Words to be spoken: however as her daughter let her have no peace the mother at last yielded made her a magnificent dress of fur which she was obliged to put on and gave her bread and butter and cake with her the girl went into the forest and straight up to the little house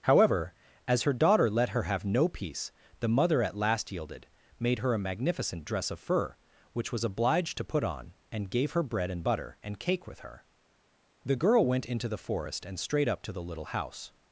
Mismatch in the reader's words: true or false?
true